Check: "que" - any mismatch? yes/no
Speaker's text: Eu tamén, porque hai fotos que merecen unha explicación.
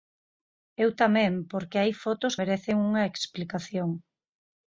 yes